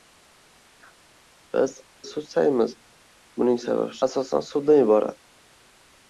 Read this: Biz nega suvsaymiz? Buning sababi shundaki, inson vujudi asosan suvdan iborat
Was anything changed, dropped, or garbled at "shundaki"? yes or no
yes